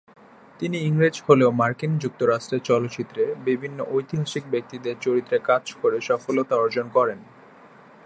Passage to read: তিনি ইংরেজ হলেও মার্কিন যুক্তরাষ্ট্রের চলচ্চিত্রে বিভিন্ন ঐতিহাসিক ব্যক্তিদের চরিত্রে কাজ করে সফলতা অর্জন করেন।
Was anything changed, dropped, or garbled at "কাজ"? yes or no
no